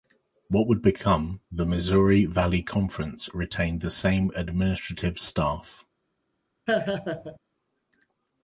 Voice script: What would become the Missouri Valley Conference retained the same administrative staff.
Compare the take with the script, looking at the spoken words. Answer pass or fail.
pass